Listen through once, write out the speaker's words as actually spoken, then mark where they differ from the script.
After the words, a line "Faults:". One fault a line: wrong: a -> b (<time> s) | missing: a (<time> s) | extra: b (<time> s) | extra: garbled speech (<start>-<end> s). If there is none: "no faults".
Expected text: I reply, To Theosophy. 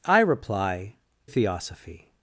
I reply, Theosophy.
Faults:
missing: To (0.9 s)